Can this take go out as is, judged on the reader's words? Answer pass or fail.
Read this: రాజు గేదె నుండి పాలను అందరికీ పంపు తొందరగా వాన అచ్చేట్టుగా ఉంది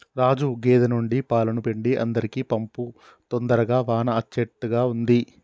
fail